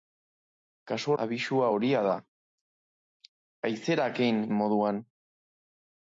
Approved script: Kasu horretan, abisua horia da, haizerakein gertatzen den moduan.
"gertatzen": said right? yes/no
no